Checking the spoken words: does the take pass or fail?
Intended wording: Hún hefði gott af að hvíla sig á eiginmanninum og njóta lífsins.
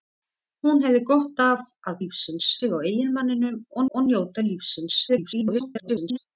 fail